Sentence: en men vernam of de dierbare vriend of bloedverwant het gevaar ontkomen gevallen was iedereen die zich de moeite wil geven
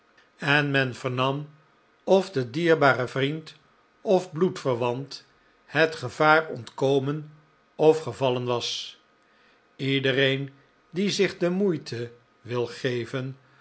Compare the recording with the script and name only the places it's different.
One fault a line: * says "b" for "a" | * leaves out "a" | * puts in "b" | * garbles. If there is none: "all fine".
* puts in "of"